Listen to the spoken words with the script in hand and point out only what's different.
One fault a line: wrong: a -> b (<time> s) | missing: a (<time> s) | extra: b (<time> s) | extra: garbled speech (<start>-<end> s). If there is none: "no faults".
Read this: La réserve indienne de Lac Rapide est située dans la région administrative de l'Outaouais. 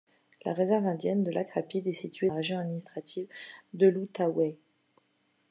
missing: dans (2.3 s)